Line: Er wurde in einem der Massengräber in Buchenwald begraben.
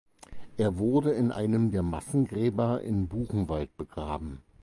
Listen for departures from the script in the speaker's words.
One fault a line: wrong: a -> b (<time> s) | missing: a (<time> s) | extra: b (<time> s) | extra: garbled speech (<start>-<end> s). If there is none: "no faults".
no faults